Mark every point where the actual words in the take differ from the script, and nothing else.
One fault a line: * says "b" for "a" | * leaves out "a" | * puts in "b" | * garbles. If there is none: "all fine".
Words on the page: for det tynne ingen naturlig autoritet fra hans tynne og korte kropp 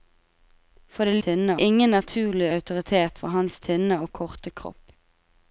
all fine